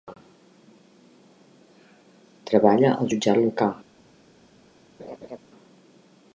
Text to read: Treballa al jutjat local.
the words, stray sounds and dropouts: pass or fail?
fail